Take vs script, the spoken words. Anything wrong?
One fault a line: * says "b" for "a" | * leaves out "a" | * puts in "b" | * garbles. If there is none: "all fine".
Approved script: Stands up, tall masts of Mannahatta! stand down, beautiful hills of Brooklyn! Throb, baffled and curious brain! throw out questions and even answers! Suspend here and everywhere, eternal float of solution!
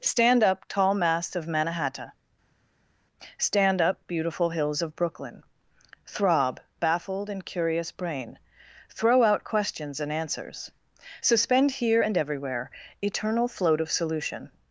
* says "Stand" for "Stands"
* says "up" for "down"
* leaves out "even"